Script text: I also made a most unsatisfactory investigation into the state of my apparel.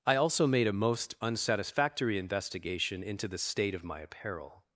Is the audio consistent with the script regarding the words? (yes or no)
yes